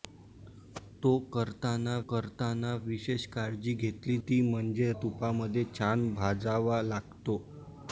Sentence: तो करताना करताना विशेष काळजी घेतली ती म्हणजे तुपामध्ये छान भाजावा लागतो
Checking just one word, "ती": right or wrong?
right